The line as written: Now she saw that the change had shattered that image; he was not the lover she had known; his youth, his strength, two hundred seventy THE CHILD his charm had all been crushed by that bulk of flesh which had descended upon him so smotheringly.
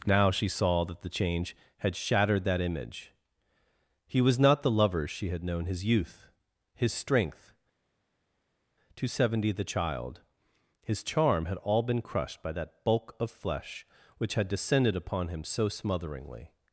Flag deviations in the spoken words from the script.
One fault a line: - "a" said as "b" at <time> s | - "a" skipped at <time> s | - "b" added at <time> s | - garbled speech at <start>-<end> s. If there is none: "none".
none